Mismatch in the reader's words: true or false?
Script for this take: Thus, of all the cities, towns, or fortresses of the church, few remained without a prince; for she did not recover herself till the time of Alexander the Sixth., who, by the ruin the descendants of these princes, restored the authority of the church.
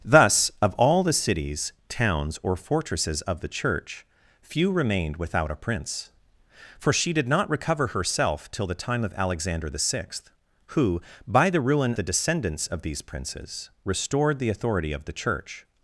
false